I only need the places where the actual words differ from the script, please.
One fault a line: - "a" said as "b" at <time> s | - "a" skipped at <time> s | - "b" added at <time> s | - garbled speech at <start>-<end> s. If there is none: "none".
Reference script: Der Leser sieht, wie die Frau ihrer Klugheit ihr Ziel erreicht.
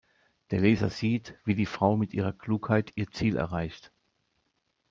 - "mit" added at 1.9 s